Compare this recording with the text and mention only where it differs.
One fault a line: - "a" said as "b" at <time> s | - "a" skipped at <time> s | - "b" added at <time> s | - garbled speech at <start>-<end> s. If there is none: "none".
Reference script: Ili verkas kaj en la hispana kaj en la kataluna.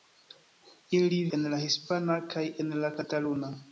- "verkas kaj" skipped at 1.2 s